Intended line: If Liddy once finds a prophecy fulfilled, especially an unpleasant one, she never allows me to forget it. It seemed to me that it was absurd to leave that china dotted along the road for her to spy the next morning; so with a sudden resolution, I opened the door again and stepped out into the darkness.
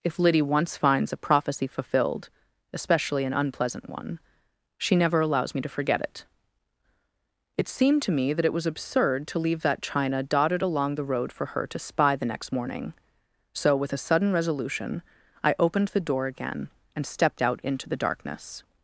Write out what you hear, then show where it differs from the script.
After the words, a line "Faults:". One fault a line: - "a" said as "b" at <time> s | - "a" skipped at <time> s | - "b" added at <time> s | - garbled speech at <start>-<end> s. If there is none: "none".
If Liddy once finds a prophecy fulfilled, especially an unpleasant one, she never allows me to forget it. It seemed to me that it was absurd to leave that china dotted along the road for her to spy the next morning; so with a sudden resolution, I opened the door again and stepped out into the darkness.
Faults:
none